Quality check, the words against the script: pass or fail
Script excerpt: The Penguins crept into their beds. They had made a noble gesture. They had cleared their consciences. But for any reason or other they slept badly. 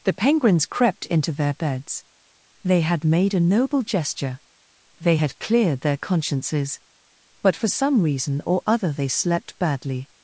fail